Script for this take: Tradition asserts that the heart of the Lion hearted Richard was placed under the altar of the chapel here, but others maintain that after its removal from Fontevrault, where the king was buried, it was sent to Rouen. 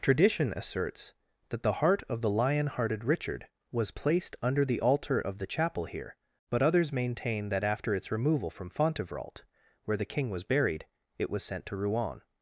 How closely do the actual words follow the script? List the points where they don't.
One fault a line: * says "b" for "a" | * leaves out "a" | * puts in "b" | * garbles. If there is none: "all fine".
all fine